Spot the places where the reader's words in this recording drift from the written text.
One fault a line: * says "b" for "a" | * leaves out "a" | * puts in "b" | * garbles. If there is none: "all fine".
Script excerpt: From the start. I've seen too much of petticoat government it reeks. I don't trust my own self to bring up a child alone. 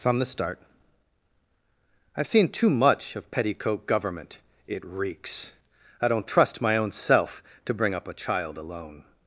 all fine